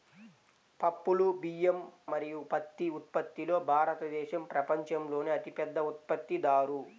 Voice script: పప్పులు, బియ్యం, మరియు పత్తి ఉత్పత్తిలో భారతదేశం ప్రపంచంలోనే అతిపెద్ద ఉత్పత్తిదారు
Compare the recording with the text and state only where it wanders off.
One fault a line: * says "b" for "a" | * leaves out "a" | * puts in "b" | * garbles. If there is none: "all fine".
all fine